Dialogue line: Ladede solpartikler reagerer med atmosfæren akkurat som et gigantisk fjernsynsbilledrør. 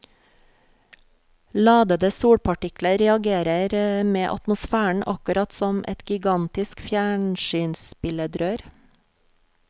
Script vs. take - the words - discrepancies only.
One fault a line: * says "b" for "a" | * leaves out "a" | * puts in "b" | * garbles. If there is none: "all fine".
all fine